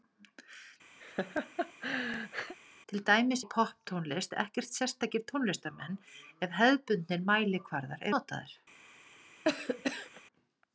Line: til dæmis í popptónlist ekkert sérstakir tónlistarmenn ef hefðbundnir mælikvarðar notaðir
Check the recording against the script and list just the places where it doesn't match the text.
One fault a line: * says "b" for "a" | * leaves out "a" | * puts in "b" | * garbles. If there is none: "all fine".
all fine